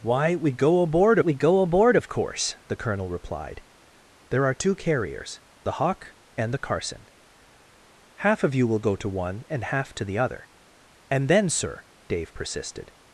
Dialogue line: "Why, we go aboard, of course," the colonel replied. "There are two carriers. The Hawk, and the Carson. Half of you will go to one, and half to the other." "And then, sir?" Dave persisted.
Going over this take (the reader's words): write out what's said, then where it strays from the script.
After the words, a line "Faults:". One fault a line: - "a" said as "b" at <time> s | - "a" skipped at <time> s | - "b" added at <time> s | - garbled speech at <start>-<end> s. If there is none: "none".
"Why, we go aboard we go aboard, of course," the colonel replied. "There are two carriers. The Hawk, and the Carson. Half of you will go to one, and half to the other." "And then, sir?" Dave persisted.
Faults:
- "we go aboard" added at 1.2 s